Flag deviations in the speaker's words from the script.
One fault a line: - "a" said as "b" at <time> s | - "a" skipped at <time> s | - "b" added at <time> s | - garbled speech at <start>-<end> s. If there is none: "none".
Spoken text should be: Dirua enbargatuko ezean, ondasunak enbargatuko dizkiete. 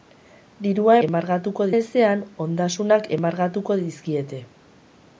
none